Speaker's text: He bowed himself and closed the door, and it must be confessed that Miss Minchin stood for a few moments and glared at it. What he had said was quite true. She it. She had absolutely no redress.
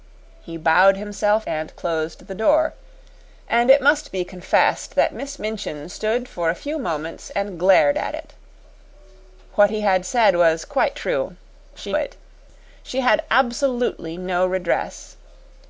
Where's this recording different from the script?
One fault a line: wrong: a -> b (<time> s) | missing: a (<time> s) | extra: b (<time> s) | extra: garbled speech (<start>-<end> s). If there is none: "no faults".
no faults